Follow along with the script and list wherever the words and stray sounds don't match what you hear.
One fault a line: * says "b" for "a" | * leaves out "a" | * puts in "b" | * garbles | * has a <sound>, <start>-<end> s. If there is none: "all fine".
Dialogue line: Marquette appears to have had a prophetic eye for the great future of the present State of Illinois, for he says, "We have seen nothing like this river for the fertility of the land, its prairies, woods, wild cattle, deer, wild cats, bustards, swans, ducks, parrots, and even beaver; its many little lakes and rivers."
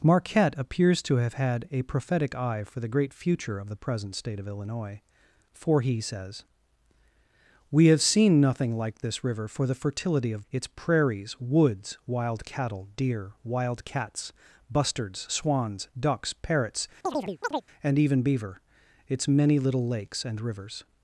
* leaves out "the land"
* has a chirp, 17.0-17.7 s